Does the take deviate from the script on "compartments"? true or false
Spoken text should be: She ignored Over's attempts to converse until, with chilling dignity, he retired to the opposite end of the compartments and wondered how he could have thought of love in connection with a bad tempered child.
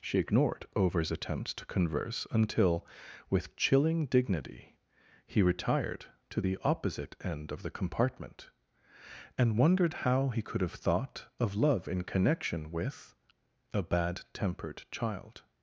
true